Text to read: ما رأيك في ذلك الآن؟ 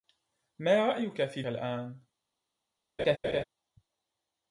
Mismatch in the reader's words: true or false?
true